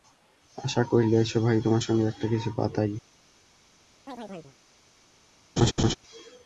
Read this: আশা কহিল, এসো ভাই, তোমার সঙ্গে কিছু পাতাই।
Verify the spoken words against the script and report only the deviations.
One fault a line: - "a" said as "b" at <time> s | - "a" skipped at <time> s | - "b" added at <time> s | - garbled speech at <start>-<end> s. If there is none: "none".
- "একটা" added at 2.1 s